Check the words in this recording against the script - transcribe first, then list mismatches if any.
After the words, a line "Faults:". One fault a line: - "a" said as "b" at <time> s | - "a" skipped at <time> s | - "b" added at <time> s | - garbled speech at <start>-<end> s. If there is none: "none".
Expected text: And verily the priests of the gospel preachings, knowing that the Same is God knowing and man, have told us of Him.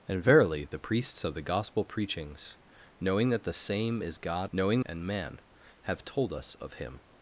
And verily the priests of the gospel preachings, knowing that the Same is God knowing and man, have told us of Him.
Faults:
none